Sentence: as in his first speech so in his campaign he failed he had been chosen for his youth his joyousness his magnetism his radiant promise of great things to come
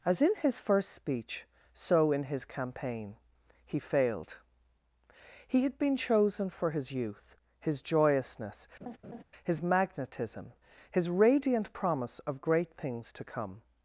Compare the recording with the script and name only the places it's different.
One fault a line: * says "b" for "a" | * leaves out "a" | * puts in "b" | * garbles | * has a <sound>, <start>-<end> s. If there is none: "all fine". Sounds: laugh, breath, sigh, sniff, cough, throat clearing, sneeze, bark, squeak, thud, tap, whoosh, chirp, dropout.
* has a laugh, 8.8-9.2 s